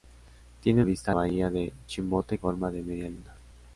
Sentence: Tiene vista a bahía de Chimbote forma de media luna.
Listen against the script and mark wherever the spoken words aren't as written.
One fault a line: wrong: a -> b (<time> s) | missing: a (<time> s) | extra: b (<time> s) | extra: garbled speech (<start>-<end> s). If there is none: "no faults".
no faults